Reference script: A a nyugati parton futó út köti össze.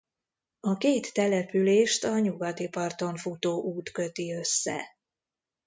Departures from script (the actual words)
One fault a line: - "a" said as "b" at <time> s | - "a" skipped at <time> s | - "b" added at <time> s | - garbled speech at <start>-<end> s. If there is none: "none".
- "két települést" added at 0.8 s